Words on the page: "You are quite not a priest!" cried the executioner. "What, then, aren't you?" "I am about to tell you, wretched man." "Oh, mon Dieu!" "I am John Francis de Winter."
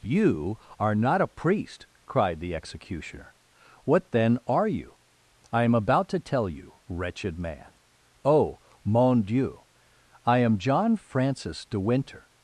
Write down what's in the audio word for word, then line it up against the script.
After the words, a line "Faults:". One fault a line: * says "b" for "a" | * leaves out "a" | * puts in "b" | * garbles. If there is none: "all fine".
"You are not a priest!" cried the executioner. "What, then, are you?" "I am about to tell you, wretched man." "Oh, mon Dieu!" "I am John Francis de Winter."
Faults:
* leaves out "quite"
* says "are" for "aren't"